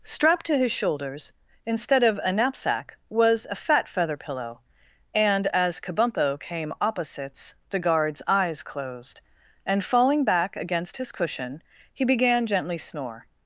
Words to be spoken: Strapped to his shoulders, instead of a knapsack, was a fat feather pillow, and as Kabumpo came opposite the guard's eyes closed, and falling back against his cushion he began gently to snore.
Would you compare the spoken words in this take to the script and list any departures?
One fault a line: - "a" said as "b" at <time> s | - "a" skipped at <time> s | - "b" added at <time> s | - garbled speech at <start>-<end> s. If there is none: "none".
- "opposite" said as "opposites" at 6.8 s
- "to" skipped at 12.8 s